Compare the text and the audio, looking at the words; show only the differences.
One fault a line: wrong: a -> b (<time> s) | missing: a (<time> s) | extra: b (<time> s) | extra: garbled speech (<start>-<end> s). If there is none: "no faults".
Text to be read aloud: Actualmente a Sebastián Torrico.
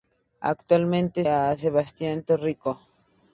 no faults